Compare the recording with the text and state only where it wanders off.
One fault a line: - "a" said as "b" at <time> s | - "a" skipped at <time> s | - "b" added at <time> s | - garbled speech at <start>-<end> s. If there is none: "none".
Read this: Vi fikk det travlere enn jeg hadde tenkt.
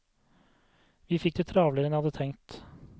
none